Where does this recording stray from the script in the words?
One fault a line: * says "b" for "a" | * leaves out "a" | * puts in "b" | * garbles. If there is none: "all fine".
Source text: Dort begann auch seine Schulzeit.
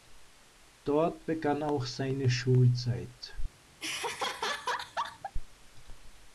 all fine